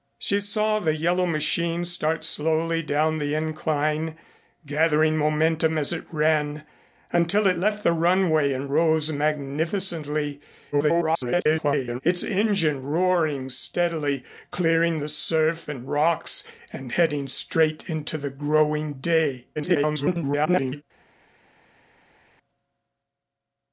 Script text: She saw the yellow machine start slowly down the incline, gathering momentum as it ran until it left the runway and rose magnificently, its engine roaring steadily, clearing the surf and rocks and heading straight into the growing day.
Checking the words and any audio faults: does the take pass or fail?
fail